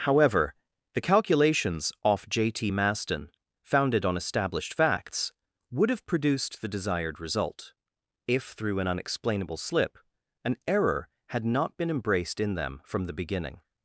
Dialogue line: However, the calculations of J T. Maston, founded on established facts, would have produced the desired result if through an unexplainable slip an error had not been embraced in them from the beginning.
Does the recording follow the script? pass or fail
fail